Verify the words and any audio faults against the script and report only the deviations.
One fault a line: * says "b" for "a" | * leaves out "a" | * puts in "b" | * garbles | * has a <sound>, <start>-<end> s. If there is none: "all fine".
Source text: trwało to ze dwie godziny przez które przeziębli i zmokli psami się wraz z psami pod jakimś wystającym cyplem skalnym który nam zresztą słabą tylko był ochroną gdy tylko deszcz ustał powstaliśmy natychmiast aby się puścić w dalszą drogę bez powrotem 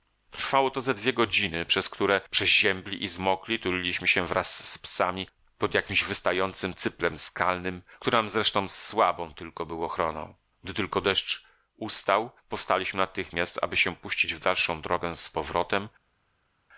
* says "tuliliśmy" for "psami"
* says "z" for "bez"